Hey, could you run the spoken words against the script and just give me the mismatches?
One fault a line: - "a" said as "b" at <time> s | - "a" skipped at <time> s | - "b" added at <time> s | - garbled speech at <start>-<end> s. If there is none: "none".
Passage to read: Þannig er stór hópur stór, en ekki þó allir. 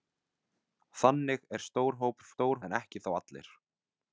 none